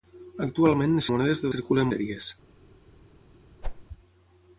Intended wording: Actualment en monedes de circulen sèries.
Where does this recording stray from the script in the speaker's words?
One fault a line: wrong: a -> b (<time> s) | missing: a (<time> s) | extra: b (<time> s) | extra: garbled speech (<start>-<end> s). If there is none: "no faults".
no faults